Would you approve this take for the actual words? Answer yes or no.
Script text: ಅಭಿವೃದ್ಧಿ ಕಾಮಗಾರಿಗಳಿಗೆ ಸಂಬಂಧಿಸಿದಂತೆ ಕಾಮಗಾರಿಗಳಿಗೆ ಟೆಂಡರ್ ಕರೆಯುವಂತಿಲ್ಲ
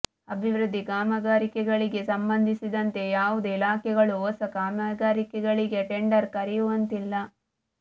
no